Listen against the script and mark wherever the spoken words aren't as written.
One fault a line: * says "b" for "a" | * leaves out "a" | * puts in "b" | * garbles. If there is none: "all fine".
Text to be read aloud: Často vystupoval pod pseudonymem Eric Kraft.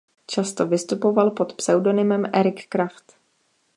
all fine